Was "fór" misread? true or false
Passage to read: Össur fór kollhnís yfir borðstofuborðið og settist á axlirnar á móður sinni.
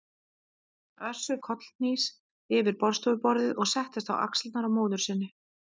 true